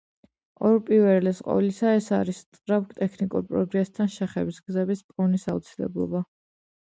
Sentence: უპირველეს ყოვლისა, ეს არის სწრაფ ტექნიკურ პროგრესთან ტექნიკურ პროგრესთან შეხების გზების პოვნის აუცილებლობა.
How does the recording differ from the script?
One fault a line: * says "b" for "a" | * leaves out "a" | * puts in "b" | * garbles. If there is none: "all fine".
* leaves out "ტექნიკურ პროგრესთან"